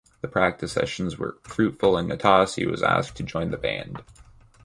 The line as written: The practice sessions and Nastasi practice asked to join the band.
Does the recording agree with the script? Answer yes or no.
no